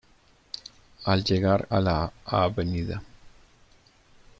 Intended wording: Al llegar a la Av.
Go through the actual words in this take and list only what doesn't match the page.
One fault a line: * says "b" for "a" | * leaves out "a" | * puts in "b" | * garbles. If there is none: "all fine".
all fine